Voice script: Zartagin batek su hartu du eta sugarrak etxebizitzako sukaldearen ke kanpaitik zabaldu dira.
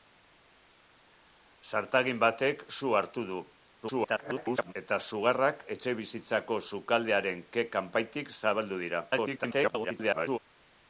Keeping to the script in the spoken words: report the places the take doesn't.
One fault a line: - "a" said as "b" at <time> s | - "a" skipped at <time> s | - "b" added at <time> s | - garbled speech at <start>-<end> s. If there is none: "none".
- garbled speech at 3.8-4.7 s
- garbled speech at 9.1-10.4 s